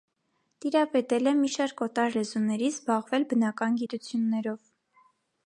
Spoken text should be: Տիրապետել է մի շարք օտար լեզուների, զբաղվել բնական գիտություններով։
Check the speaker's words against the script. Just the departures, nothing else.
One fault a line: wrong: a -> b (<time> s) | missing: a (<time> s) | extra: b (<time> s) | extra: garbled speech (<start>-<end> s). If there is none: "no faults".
no faults